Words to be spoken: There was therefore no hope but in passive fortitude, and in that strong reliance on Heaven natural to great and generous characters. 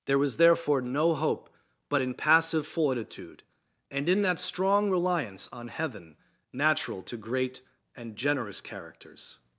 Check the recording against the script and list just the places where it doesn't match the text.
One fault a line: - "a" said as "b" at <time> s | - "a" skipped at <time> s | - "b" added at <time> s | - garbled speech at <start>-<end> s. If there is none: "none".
none